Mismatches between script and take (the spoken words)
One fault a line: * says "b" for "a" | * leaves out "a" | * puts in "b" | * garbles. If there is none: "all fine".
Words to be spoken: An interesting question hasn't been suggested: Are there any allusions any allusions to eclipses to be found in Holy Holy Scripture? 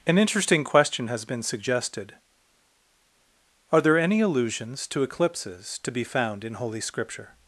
* says "has" for "hasn't"
* leaves out "any allusions"
* leaves out "Holy"